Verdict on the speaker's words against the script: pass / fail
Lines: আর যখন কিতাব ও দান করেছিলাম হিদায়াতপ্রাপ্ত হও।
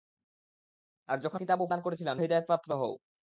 pass